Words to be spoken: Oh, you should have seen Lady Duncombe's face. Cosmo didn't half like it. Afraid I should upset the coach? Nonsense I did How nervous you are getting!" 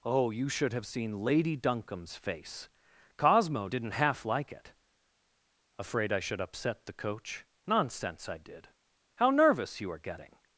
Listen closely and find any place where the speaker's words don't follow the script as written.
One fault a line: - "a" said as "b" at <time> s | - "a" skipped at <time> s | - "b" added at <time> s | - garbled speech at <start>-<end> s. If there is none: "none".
none